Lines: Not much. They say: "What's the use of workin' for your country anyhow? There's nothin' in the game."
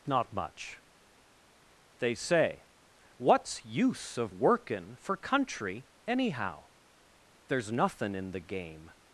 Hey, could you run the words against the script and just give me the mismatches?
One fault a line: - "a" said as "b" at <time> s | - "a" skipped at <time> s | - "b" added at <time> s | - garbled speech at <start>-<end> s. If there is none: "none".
- "the" skipped at 3.6 s
- "your" skipped at 5.2 s